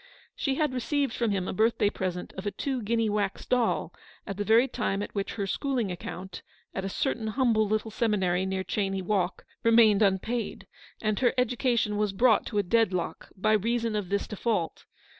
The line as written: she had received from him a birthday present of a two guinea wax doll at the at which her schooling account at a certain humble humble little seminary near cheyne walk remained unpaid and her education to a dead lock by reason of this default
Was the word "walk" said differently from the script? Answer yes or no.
no